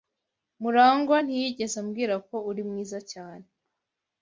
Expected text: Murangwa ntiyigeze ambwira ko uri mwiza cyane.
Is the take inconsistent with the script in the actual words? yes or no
no